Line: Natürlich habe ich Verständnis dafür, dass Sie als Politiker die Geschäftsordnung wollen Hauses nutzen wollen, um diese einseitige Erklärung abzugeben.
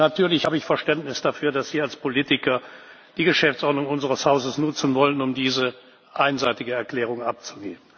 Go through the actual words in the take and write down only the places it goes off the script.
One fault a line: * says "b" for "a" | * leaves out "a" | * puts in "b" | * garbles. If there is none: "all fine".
* says "unseres" for "wollen"